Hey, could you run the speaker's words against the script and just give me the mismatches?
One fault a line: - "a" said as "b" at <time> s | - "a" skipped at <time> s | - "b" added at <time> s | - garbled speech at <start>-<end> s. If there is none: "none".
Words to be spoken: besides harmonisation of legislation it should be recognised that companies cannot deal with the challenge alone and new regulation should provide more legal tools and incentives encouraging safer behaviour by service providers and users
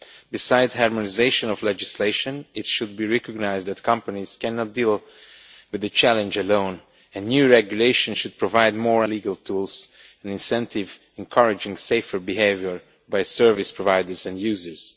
none